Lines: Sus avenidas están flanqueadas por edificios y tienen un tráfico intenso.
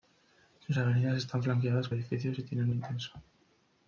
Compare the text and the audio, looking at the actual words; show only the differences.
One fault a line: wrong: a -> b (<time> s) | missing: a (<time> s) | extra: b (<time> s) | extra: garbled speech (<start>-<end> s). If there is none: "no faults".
missing: por (1.9 s)
missing: un tráfico (2.7 s)